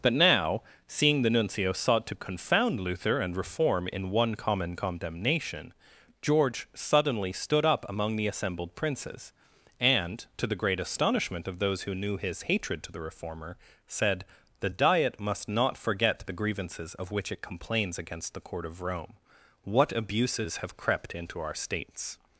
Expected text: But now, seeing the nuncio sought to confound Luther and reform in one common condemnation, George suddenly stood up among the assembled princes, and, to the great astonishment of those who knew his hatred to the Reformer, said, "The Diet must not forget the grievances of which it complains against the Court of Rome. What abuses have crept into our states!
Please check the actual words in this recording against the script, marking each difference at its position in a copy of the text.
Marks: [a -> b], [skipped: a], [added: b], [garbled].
But now, seeing the nuncio sought to confound Luther and reform in one common condemnation, George suddenly stood up among the assembled princes, and, to the great astonishment of those who knew his hatred to the Reformer, said, "The Diet must not forget the grievances of which it complains against the Court of Rome. What abuses have crept into our states!